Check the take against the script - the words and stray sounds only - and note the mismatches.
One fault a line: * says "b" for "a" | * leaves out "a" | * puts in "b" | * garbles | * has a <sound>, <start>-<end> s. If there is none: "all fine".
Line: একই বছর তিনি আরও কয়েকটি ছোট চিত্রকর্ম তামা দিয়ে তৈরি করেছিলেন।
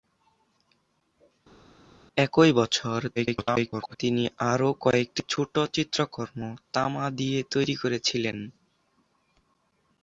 * garbles